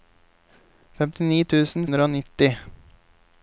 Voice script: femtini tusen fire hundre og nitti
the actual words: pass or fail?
fail